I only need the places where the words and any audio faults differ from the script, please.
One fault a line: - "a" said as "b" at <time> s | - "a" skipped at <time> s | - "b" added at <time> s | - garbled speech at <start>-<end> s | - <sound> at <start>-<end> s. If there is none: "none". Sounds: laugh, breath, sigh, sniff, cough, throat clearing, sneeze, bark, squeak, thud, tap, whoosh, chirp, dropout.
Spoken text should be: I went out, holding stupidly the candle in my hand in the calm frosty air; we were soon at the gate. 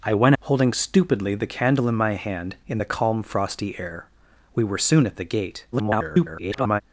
- "out" skipped at 0.3 s
- garbled speech at 5.7-6.8 s